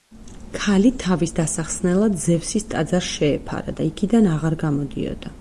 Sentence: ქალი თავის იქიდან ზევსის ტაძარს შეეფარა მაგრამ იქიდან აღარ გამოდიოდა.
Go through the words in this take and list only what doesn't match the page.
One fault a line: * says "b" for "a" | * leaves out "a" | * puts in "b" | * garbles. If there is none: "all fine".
* says "დასახსნელად" for "იქიდან"
* says "და" for "მაგრამ"